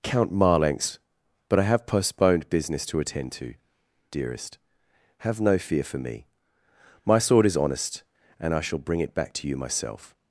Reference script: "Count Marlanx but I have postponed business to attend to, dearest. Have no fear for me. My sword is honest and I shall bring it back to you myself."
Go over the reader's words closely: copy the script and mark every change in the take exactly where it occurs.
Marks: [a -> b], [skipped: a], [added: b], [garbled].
"Count Marlanx but I have postponed business to attend to, dearest. Have no fear for me. My sword is honest and I shall bring it back to you myself."